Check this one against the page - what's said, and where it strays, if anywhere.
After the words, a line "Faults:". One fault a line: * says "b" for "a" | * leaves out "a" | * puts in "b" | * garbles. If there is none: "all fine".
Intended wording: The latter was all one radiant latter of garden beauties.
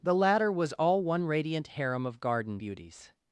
The latter was all one radiant harem of garden beauties.
Faults:
* says "harem" for "latter"